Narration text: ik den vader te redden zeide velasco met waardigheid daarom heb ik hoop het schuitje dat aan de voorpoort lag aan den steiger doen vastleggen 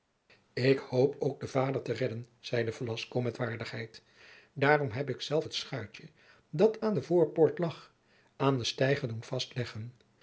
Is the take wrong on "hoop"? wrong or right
wrong